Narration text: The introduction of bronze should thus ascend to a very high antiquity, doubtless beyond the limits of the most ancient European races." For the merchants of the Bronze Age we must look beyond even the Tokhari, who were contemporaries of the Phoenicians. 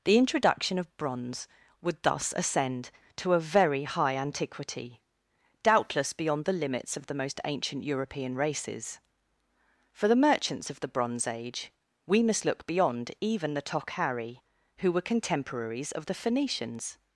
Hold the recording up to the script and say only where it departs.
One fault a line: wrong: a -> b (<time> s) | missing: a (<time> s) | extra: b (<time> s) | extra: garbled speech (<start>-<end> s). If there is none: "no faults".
wrong: should -> would (1.8 s)